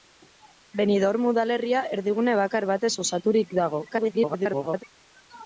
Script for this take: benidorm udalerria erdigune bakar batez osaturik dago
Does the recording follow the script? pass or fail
fail